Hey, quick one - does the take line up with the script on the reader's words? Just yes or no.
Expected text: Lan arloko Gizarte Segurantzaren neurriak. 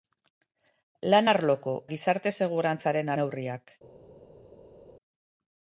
yes